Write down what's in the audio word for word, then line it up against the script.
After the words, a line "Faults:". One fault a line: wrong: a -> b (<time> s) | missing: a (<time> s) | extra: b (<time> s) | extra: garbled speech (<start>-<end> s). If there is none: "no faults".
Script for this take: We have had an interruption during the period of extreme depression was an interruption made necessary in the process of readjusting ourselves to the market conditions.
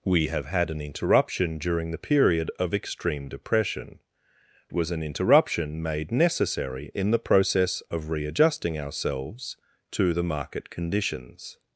We have had an interruption during the period of extreme depression was an interruption made necessary in the process of readjusting ourselves to the market conditions.
Faults:
no faults